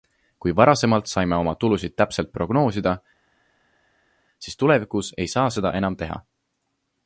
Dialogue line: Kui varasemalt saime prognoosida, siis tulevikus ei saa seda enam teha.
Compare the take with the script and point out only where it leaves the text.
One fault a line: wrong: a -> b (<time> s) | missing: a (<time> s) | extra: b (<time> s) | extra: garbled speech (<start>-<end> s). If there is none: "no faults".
extra: oma tulusid täpselt (1.4 s)